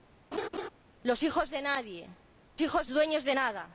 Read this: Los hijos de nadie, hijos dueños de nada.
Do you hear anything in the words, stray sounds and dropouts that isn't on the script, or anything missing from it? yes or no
yes